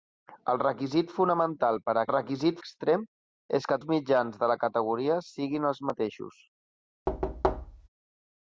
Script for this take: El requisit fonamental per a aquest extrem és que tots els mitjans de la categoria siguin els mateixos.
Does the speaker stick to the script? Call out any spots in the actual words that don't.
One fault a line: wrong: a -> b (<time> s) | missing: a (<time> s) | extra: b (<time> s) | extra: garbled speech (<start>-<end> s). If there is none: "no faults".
wrong: aquest -> requisit (2.1 s)
missing: tots (3.8 s)